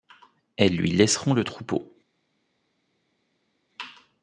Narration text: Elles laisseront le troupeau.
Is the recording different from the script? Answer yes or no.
yes